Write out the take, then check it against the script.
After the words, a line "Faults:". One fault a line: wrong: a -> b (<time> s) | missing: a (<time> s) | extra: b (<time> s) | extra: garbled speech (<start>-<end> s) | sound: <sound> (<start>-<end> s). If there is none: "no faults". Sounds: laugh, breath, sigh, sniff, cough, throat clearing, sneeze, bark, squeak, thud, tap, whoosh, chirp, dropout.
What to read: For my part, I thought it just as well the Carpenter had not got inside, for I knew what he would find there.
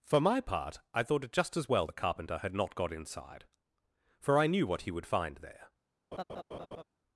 For my part, I thought it just as well the Carpenter had not got inside, for I knew what he would find there.
Faults:
sound: laugh (6.1-6.8 s)